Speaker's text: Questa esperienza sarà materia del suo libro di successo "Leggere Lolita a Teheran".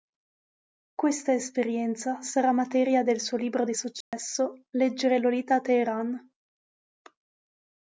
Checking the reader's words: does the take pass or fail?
pass